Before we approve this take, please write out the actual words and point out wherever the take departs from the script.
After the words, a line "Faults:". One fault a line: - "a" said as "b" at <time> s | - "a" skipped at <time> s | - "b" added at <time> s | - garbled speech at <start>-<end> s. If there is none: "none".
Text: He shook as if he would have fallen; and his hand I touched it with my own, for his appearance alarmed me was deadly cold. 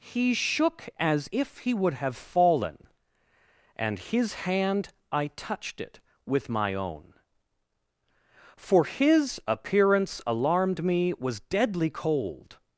He shook as if he would have fallen; and his hand I touched it with my own, for his appearance alarmed me was deadly cold.
Faults:
none